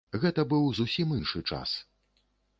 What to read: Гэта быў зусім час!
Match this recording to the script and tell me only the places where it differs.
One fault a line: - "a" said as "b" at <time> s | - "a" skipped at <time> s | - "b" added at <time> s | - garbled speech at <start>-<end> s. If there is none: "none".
- "іншы" added at 1.2 s